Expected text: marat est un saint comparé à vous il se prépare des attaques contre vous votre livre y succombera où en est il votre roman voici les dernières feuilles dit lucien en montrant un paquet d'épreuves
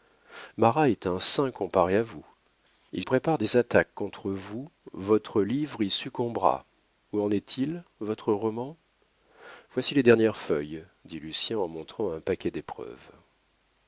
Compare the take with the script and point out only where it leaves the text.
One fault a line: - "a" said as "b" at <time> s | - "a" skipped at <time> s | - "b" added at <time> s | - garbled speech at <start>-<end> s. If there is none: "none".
- "se" skipped at 3.0 s